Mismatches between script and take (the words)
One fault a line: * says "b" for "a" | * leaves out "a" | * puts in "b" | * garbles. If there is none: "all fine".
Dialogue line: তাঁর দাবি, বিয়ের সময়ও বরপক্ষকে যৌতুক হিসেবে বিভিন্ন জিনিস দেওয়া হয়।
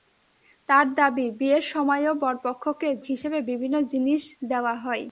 * leaves out "যৌতুক"